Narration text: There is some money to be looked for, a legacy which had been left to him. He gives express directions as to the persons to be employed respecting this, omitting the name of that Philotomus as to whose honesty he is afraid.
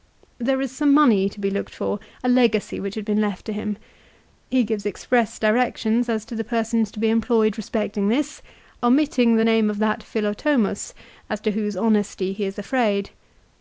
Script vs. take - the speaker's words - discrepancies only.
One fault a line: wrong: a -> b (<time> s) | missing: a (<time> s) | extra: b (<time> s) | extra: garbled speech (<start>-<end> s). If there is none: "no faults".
no faults